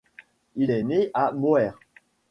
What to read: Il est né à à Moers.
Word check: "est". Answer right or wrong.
right